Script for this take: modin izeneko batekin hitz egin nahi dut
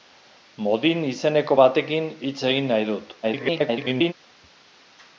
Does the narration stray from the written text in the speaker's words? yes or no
yes